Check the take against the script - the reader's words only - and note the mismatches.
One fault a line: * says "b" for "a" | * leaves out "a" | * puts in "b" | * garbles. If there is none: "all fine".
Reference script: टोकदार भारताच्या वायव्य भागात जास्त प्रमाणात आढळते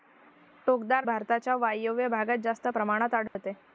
all fine